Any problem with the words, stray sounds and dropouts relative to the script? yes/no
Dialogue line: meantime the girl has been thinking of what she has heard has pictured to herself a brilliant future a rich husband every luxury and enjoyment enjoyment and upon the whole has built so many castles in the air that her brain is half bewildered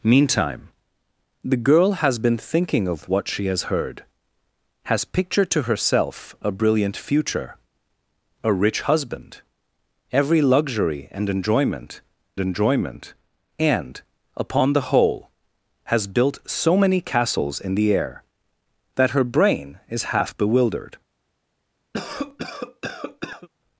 yes